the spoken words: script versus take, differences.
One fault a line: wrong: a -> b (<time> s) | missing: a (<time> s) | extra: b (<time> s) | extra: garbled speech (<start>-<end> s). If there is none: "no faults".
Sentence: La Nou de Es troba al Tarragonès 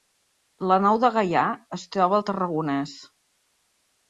extra: Gaià (1.2 s)